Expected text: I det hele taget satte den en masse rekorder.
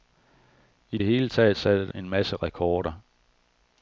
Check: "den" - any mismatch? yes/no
yes